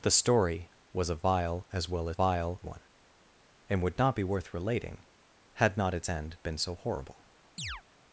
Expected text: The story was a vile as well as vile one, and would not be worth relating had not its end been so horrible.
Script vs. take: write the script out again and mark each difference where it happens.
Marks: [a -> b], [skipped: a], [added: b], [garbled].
The story was a vile as well as vile one, and would not be worth relating had not its end been so horrible.